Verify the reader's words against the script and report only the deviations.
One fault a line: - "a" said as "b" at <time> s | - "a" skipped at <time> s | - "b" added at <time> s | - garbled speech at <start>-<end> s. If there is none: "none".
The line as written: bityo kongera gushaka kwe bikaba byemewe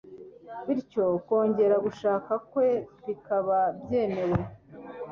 none